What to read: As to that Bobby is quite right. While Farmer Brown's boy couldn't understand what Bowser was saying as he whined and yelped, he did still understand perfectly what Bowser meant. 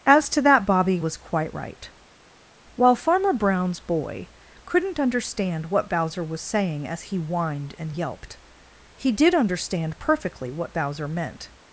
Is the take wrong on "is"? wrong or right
wrong